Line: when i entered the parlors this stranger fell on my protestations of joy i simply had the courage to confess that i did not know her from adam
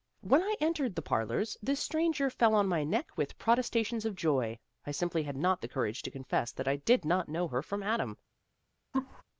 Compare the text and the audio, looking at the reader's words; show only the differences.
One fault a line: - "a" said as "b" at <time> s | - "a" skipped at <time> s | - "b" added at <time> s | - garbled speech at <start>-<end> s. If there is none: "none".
- "neck with" added at 2.8 s
- "not" added at 5.4 s